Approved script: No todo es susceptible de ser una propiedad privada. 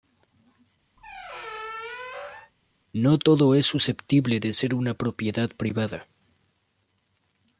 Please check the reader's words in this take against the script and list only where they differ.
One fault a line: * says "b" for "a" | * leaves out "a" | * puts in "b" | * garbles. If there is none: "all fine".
all fine